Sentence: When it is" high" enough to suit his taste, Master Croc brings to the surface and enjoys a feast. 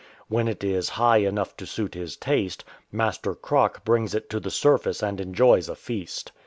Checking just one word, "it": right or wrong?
right